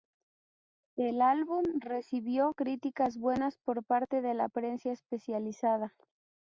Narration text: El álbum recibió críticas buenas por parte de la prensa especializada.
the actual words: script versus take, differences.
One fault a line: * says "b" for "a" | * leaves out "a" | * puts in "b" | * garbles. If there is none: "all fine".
all fine